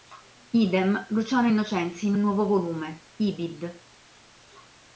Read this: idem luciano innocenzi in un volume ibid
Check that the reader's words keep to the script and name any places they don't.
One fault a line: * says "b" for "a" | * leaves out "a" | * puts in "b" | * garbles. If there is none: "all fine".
* puts in "nuovo"